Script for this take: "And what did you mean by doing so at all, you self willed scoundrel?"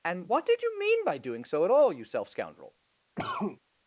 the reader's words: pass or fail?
fail